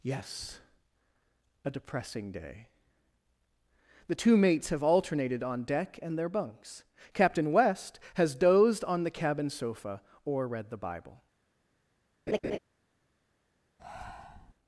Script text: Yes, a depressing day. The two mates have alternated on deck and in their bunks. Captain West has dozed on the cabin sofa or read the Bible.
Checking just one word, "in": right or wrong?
wrong